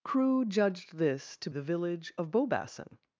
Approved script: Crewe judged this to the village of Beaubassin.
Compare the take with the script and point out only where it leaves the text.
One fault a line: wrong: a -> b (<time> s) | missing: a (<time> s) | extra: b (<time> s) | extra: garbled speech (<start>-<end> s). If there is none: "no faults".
no faults